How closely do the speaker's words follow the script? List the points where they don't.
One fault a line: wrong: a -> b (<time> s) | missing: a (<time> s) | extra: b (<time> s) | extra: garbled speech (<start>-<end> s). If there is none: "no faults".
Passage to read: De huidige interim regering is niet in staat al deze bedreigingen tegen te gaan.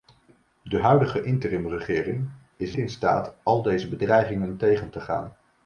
missing: niet (2.8 s)